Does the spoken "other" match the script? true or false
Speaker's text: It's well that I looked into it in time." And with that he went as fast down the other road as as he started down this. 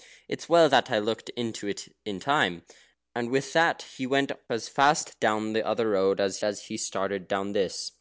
true